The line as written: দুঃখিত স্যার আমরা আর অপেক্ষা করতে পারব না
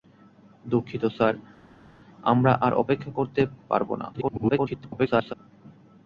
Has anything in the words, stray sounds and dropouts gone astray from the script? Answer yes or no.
yes